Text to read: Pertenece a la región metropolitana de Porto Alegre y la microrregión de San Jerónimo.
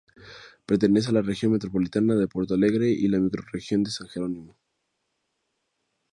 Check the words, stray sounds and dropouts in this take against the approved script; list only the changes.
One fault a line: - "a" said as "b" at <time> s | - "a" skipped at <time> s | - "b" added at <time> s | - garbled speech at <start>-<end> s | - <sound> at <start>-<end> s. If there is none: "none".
none